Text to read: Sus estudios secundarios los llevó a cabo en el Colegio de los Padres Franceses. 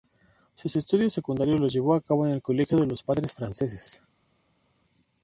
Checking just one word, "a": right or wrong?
right